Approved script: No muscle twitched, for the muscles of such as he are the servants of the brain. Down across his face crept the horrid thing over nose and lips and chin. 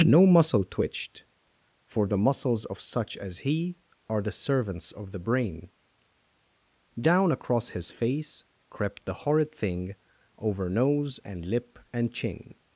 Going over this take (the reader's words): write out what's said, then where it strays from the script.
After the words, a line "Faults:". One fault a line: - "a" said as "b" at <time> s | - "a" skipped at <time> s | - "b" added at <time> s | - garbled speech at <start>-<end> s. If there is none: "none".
No muscle twitched, for the muscles of such as he are the servants of the brain. Down across his face crept the horrid thing over nose and lip and chin.
Faults:
- "lips" said as "lip" at 11.4 s